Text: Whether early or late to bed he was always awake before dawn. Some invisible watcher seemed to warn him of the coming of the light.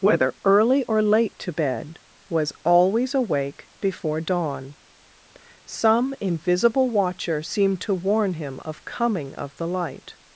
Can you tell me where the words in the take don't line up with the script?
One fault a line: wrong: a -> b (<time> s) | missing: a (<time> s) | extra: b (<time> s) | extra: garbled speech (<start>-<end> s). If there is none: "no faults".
missing: he (2.0 s)
missing: the (8.8 s)